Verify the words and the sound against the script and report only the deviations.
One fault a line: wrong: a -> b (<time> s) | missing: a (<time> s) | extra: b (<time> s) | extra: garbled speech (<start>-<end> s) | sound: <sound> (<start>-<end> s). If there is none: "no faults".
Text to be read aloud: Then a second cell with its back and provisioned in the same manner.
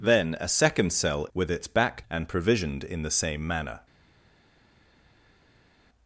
no faults